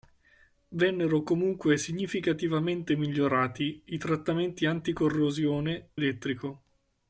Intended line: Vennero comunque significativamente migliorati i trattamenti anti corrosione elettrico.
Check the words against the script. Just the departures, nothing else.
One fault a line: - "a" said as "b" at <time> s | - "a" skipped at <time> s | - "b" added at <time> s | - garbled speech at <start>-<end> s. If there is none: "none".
none